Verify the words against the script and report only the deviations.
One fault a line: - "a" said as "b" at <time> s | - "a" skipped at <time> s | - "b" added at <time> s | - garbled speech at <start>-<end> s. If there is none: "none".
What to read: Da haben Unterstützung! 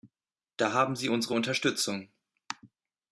- "Sie unsere" added at 0.9 s